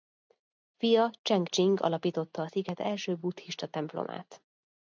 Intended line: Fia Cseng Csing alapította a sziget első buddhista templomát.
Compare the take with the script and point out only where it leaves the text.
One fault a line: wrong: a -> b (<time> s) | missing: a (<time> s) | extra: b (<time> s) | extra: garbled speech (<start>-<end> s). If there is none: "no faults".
no faults